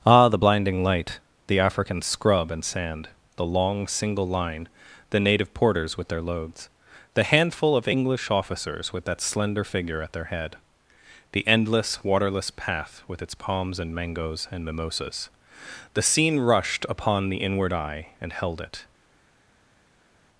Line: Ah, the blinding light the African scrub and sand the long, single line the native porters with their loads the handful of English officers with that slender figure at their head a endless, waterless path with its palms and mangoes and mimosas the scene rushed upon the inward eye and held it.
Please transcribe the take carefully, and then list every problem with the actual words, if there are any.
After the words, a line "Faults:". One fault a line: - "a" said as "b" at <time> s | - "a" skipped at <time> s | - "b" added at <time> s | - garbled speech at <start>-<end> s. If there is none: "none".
Ah, the blinding light the African scrub and sand the long, single line the native porters with their loads the handful of English officers with that slender figure at their head the endless, waterless path with its palms and mangoes and mimosas the scene rushed upon the inward eye and held it.
Faults:
- "a" said as "the" at 11.3 s